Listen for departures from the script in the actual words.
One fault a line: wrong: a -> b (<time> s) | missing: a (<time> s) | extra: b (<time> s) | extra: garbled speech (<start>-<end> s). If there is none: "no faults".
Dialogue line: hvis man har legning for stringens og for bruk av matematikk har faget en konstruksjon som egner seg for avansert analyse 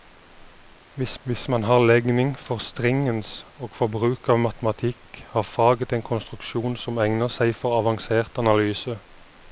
extra: hvis (1.2 s)